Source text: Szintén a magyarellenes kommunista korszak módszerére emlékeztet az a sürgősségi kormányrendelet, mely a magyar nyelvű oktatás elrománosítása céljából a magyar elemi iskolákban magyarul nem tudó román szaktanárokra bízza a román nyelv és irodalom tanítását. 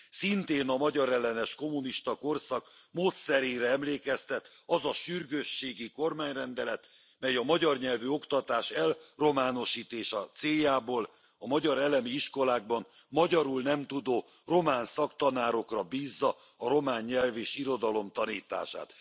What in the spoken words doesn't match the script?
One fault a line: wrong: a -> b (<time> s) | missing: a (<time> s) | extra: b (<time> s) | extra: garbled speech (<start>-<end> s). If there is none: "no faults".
no faults